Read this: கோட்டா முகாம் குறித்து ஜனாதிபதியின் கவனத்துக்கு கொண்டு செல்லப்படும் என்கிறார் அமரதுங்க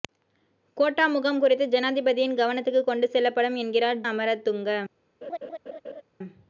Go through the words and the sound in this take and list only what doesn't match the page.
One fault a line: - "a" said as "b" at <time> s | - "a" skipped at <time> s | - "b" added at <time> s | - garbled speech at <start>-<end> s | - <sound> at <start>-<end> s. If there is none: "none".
- laugh at 5.2-6.0 s